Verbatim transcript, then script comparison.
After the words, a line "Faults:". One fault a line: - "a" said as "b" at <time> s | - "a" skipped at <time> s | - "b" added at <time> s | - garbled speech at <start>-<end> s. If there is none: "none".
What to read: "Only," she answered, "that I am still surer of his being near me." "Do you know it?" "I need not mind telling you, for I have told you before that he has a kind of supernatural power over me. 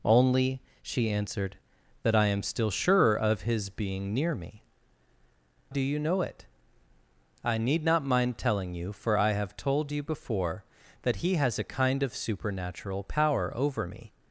"Only," she answered, "that I am still surer of his being near me." "Do you know it?" "I need not mind telling you, for I have told you before that he has a kind of supernatural power over me.
Faults:
none